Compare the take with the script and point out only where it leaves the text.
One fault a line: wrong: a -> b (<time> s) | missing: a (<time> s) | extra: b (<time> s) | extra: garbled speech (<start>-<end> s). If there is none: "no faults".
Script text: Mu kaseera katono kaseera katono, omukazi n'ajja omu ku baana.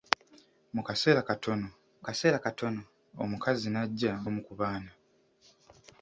no faults